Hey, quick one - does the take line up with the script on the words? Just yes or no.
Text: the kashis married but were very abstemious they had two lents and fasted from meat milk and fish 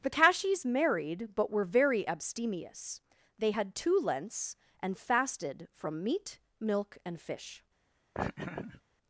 yes